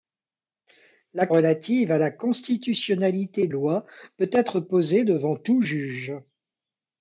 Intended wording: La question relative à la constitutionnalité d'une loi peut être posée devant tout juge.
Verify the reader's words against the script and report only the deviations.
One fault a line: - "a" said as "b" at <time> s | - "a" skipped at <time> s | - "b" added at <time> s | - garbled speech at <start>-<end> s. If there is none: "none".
- "question" skipped at 1.3 s
- "d'une" skipped at 3.5 s